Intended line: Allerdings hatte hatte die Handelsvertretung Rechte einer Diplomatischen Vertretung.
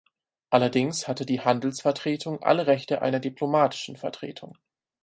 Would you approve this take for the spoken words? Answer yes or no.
no